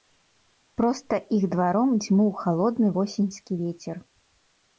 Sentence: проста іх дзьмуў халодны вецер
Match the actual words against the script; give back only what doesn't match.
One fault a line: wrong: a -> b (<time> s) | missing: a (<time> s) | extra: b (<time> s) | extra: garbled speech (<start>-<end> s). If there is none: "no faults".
extra: дваром (1.6 s)
extra: восеньскі (3.0 s)